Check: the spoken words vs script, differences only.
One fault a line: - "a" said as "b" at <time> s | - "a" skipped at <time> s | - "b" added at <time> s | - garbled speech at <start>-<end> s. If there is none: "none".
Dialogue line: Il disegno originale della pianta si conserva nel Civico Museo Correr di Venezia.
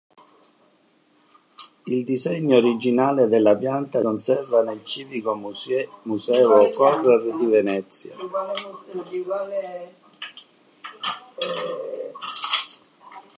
- "si" skipped at 4.0 s